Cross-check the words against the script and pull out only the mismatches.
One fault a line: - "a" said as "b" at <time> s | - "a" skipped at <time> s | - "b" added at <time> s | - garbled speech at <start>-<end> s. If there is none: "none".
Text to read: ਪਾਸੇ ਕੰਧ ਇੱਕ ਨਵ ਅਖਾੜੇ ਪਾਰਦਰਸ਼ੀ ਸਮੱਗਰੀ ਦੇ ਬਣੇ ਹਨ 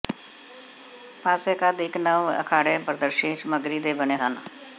none